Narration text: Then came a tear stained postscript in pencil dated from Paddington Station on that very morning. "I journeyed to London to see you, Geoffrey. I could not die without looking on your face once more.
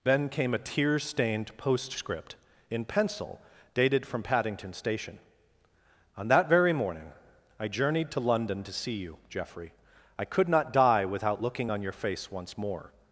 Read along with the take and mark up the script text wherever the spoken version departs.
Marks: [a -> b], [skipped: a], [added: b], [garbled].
Then came a tear stained postscript in pencil dated from Paddington Station on that very morning. "I journeyed to London to see you, Geoffrey. I could not die without looking on your face once more.